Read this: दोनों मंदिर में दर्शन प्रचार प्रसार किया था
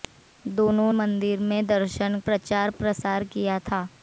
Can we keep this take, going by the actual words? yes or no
yes